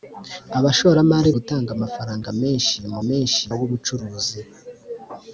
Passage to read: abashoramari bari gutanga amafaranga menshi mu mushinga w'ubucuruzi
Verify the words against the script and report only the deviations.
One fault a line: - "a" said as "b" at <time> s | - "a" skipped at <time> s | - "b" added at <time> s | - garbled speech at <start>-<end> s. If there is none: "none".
- "bari" skipped at 1.3 s
- "mushinga" said as "menshi" at 3.1 s